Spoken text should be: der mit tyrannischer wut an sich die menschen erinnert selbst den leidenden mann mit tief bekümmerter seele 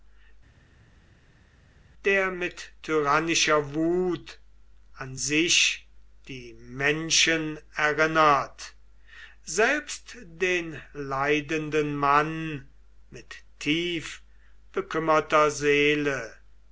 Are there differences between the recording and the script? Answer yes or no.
no